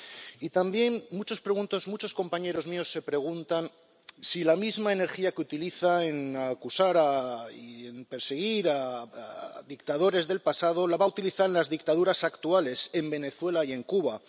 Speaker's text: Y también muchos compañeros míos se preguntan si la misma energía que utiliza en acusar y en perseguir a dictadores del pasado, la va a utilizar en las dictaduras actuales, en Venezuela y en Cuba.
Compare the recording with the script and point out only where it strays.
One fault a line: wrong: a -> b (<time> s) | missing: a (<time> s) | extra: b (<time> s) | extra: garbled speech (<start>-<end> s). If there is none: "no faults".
no faults